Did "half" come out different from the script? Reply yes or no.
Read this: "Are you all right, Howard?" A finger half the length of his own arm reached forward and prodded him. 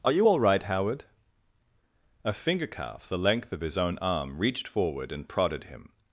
yes